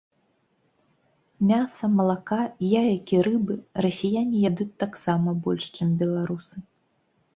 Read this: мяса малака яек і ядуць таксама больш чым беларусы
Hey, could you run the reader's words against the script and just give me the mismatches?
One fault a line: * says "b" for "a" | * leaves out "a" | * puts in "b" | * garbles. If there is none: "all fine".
* puts in "рыбы расіяне"